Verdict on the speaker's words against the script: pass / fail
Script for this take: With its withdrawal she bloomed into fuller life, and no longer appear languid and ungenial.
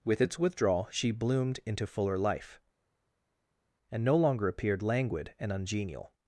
fail